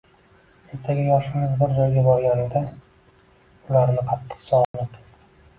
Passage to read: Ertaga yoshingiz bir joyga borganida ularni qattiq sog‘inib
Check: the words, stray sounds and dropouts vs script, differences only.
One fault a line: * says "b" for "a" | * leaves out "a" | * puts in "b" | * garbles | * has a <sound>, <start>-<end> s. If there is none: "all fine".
* has a dropout, 4.6-4.7 s